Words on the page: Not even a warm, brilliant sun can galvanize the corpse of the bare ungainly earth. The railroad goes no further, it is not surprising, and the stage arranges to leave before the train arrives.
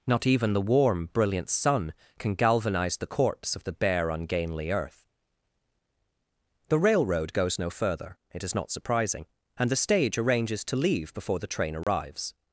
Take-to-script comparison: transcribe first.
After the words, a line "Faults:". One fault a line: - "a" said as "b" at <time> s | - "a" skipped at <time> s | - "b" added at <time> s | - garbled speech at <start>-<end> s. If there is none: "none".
Not even the warm, brilliant sun can galvanize the corpse of the bare ungainly earth. The railroad goes no further, it is not surprising, and the stage arranges to leave before the train arrives.
Faults:
- "a" said as "the" at 0.5 s